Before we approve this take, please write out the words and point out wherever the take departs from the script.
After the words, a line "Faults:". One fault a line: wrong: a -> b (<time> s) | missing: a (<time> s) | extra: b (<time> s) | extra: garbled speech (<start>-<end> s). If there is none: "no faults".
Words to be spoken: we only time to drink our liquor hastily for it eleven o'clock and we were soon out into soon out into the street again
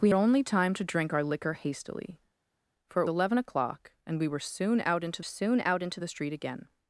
we only time to drink our liquor hastily for it eleven o'clock and we were soon out into soon out into the street again
Faults:
no faults